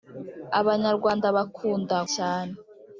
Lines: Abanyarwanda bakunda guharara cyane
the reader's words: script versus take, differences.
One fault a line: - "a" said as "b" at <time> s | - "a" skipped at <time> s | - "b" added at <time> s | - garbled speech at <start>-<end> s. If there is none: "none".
- "guharara" skipped at 2.0 s